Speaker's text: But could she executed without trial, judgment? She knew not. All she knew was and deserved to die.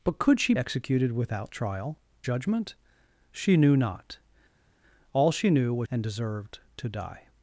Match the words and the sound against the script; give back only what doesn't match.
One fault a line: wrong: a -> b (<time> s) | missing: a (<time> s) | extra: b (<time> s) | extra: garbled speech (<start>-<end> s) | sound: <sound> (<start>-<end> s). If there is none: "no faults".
no faults